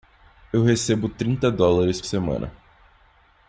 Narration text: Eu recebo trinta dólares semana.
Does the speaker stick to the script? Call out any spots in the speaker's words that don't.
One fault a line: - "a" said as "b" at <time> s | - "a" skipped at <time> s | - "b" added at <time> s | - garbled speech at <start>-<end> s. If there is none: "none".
none